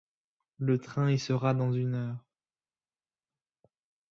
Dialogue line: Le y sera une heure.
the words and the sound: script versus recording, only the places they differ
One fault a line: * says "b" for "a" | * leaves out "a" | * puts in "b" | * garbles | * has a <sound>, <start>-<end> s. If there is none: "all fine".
* puts in "train"
* puts in "dans"